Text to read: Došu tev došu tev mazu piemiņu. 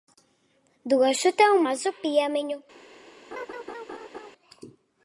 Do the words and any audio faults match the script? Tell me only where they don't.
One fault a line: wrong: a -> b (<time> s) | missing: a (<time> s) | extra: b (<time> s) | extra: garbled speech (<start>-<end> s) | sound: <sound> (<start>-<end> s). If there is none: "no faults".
missing: došu tev (1.6 s)
sound: laugh (3.3-4.3 s)